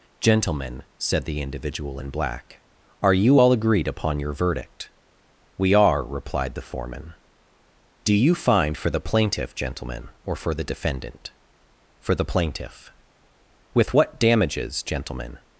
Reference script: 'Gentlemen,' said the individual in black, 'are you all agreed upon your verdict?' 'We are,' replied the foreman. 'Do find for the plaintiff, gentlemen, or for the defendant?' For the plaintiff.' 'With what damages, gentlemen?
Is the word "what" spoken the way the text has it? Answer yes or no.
yes